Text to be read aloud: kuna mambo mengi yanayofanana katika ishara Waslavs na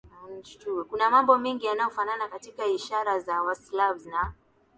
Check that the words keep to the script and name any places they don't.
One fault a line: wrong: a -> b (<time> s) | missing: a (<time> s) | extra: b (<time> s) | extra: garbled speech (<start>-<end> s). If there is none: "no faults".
extra: za (3.2 s)